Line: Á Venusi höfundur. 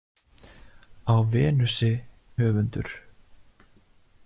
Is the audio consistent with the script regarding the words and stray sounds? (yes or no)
yes